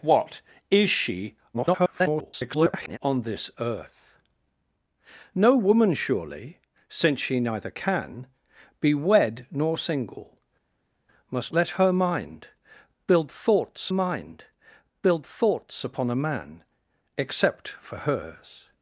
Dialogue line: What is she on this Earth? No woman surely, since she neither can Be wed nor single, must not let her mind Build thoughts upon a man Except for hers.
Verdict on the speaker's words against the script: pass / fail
fail